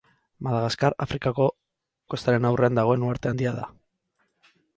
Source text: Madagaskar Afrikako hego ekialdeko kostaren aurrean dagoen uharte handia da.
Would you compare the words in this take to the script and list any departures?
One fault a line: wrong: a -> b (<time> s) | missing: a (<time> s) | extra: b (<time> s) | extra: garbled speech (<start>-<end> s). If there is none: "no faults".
missing: hego ekialdeko (1.4 s)